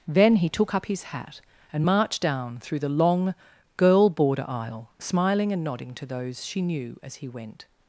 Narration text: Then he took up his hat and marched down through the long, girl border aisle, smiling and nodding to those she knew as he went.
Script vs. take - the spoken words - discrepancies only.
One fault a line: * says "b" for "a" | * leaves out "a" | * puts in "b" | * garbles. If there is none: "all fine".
all fine